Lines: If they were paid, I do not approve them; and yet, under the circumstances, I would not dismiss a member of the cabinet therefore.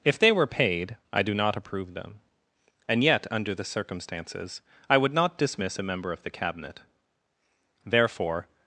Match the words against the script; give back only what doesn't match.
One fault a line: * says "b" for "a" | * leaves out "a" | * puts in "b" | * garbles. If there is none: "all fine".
all fine